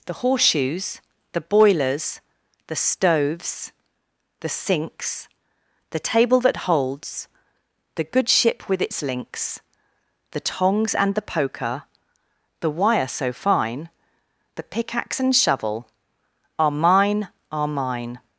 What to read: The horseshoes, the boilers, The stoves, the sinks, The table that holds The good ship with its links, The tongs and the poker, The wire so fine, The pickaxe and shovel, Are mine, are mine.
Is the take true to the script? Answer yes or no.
yes